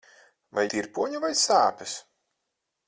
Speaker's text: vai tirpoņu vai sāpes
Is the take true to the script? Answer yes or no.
yes